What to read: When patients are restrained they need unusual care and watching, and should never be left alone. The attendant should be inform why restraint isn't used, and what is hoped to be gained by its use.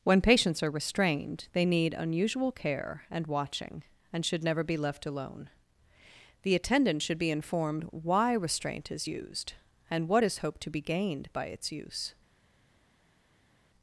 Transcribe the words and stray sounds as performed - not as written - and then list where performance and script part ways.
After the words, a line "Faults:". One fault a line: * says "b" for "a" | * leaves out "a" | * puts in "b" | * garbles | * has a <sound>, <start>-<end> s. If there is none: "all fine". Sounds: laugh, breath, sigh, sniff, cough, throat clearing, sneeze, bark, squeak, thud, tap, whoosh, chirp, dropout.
When patients are restrained they need unusual care and watching, and should never be left alone. The attendant should be informed why restraint is used, and what is hoped to be gained by its use.
Faults:
* says "informed" for "inform"
* says "is" for "isn't"